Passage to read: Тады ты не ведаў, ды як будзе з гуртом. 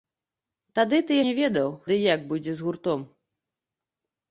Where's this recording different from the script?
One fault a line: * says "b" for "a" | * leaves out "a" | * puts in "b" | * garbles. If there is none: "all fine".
all fine